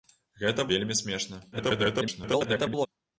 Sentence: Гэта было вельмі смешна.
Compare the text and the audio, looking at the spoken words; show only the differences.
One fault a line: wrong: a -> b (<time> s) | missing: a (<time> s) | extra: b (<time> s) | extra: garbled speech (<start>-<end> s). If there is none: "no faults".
missing: было (0.7 s)
extra: garbled speech (1.5-2.9 s)